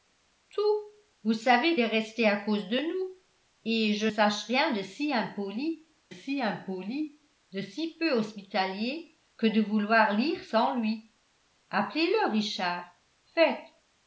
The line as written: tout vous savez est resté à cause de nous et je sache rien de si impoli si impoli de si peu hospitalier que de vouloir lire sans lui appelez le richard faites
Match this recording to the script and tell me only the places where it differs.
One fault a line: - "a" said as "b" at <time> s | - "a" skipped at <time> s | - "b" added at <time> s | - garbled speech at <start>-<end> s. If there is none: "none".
none